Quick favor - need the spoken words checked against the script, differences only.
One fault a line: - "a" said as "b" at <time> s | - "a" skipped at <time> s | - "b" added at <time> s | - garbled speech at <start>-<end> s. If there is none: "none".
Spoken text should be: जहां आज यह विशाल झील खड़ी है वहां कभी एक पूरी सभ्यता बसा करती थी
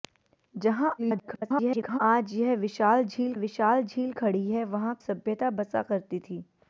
- garbled speech at 1.0-2.0 s
- "विशाल झील" added at 3.4 s
- "कभी एक पूरी" skipped at 4.9 s